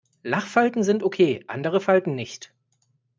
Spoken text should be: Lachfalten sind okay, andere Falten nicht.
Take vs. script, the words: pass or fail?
pass